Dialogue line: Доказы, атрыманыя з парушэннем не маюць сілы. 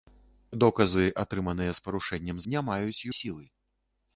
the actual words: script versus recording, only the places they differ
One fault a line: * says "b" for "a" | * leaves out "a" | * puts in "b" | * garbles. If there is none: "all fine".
all fine